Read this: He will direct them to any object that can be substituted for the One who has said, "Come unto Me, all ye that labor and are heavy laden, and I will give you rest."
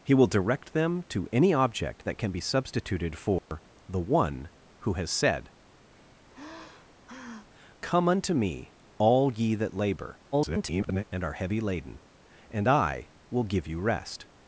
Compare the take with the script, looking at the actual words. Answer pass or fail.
fail